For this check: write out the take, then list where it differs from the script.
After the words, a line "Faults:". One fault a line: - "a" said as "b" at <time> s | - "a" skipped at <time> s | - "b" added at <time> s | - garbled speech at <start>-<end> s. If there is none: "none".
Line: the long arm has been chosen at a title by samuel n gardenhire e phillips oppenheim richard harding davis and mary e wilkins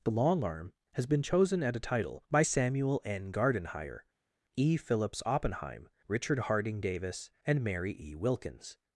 the long arm has been chosen at a title by samuel n gardenhire e phillips oppenheim richard harding davis and mary e wilkins
Faults:
none